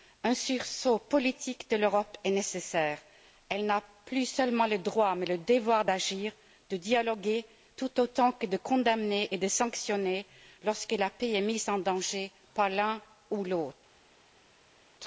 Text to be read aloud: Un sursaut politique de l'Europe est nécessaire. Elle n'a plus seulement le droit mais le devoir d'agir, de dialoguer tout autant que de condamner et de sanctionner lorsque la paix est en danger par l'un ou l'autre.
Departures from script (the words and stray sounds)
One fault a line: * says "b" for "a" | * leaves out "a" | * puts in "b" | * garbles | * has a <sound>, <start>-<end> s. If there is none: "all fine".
* puts in "mise"